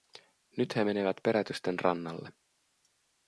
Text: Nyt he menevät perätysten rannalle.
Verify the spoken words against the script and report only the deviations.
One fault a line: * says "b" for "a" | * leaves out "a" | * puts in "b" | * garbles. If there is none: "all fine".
all fine